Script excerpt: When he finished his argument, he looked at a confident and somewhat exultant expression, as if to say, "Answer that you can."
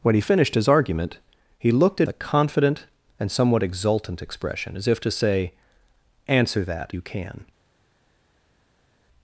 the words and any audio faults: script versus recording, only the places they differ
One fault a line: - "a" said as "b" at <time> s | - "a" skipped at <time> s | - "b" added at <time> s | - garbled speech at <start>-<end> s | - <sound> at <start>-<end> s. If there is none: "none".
none